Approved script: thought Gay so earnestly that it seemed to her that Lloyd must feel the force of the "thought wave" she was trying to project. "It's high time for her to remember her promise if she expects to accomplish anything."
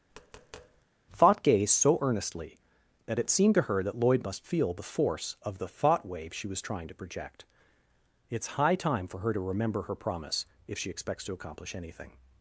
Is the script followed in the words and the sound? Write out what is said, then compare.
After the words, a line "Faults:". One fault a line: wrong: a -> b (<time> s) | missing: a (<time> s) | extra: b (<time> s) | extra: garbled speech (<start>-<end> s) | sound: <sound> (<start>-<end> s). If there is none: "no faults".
thought Gay so earnestly that it seemed to her that Lloyd must feel the force of the "thought wave" she was trying to project. "It's high time for her to remember her promise if she expects to accomplish anything."
Faults:
sound: tap (0.1-0.9 s)